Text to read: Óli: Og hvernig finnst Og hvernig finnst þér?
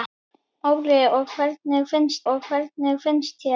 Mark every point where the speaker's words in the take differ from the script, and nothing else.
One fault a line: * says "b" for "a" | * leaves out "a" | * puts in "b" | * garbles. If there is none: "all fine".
all fine